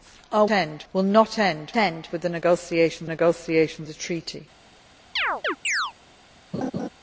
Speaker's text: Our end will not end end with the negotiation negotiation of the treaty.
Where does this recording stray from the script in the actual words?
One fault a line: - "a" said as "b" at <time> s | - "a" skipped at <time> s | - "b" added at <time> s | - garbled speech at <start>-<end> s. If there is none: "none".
none